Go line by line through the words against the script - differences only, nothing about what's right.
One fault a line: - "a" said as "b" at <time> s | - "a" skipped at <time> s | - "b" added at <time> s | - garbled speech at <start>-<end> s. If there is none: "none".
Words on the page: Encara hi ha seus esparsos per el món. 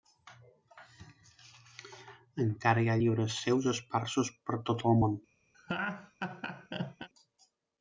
- "llibres" added at 3.0 s
- "tot" added at 4.7 s